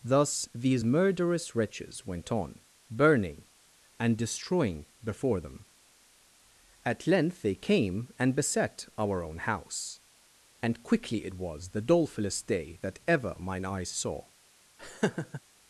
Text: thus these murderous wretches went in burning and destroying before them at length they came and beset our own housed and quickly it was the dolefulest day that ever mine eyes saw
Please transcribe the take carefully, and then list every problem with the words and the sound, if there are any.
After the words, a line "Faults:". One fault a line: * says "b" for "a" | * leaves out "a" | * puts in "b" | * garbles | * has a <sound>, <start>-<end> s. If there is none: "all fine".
thus these murderous wretches went on burning and destroying before them at length they came and beset our own house and quickly it was the dolefulest day that ever mine eyes saw
Faults:
* says "on" for "in"
* says "house" for "housed"
* has a laugh, 14.8-15.4 s